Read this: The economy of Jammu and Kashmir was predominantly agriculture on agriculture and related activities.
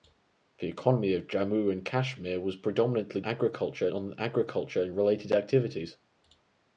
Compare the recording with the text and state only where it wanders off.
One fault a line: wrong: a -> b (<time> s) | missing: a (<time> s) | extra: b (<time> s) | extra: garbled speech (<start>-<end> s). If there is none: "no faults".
no faults